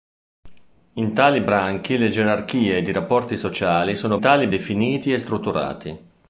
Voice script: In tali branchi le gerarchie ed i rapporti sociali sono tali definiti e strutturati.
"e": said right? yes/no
yes